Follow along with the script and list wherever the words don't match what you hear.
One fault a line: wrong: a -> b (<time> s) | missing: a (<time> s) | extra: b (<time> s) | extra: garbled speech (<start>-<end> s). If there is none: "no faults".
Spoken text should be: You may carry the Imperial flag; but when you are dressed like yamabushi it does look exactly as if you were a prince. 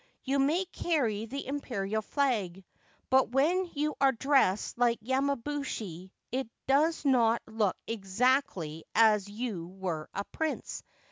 extra: not (7.0 s)